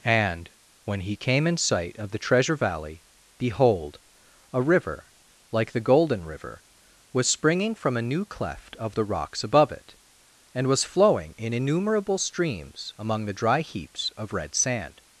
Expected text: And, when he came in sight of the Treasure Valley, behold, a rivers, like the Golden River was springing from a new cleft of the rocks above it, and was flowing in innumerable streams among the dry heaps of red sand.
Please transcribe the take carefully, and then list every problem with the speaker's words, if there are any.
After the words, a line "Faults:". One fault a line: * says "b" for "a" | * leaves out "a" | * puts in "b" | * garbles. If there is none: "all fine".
And, when he came in sight of the Treasure Valley, behold, a river, like the Golden River was springing from a new cleft of the rocks above it, and was flowing in innumerable streams among the dry heaps of red sand.
Faults:
* says "river" for "rivers"